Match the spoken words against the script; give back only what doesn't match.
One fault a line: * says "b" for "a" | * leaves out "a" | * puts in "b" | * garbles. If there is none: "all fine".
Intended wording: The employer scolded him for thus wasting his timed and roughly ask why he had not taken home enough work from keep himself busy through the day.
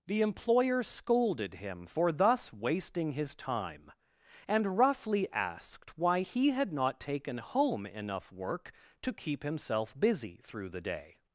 * says "time" for "timed"
* says "asked" for "ask"
* says "to" for "from"